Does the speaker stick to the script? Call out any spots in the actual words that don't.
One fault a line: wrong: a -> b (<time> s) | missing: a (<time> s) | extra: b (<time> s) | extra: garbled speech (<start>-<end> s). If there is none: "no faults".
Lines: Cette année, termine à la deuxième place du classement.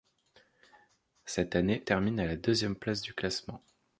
no faults